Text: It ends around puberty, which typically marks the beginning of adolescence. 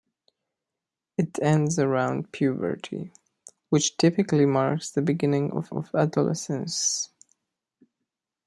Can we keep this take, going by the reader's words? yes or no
no